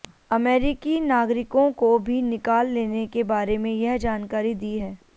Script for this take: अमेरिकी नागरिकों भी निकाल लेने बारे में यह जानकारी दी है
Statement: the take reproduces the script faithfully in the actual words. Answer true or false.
false